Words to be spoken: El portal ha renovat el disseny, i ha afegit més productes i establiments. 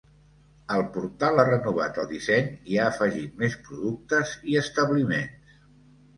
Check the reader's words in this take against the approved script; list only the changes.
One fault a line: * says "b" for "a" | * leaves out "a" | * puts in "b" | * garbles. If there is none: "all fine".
all fine